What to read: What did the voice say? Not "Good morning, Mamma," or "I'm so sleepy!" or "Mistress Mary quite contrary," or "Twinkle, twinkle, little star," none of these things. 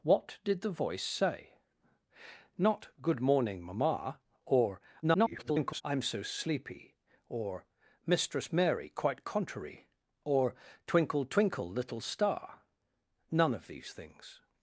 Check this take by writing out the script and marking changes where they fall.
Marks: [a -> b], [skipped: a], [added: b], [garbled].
What did the voice say? Not "Good morning, Mamma," or [garbled] "I'm so sleepy!" or "Mistress Mary quite contrary," or "Twinkle, twinkle, little star," none of these things.